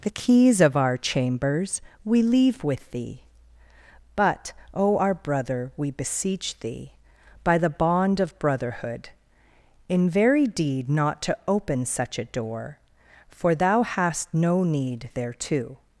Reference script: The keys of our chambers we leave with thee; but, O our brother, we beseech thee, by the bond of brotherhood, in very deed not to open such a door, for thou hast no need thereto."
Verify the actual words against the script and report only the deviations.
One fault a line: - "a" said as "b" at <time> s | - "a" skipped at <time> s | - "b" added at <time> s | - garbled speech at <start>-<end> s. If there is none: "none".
none